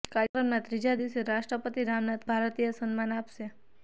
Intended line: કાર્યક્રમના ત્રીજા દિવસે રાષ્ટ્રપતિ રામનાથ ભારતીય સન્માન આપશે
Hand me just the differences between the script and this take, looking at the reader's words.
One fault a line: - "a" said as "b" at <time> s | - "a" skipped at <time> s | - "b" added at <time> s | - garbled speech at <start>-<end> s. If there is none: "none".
none